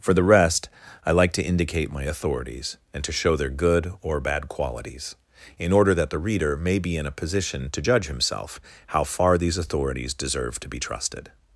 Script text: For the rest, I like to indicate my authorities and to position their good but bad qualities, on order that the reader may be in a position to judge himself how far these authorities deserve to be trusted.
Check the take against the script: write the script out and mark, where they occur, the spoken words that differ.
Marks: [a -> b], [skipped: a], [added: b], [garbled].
For the rest, I like to indicate my authorities and to [position -> show] their good [but -> or] bad qualities, [on -> in] order that the reader may be in a position to judge himself how far these authorities deserve to be trusted.